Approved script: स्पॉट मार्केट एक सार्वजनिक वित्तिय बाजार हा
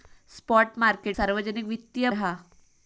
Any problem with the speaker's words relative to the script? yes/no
yes